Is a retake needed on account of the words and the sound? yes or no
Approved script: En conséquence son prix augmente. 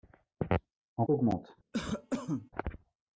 yes